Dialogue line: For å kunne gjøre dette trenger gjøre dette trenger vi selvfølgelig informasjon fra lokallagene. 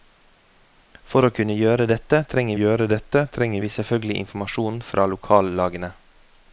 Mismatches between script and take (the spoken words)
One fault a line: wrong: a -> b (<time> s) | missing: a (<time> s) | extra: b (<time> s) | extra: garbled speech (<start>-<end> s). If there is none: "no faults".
no faults